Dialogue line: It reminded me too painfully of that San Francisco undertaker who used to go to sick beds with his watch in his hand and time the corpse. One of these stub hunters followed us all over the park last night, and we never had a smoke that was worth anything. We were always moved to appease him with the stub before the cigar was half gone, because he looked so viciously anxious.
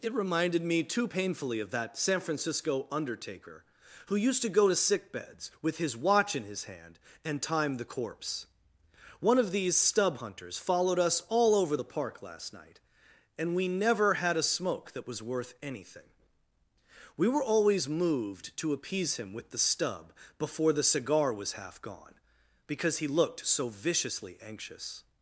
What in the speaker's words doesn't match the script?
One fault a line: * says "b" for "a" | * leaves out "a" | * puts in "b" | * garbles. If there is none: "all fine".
all fine